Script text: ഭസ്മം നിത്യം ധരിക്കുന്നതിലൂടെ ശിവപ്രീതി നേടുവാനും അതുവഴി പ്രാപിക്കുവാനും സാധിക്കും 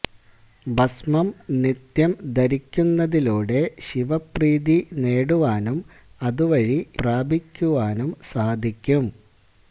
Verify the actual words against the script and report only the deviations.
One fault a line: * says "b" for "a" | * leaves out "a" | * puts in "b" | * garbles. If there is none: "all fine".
all fine